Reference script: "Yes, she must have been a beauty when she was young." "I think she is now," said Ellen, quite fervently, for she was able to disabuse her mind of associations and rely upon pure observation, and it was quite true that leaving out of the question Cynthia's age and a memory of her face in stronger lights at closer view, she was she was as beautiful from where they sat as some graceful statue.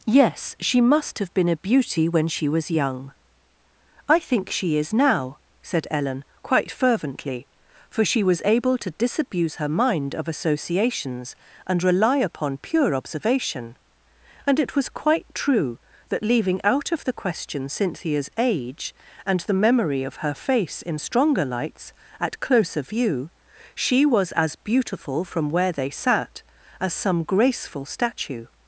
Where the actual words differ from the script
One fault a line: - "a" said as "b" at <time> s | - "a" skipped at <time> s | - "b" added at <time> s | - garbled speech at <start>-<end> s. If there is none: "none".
- "a" said as "the" at 19.4 s
- "she was" skipped at 24.3 s